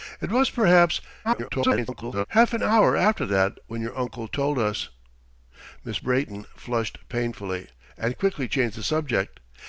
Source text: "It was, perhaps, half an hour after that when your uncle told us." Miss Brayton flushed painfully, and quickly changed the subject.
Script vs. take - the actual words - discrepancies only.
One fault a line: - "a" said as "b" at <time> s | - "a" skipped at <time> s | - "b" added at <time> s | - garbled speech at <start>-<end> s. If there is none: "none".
- garbled speech at 1.2-2.2 s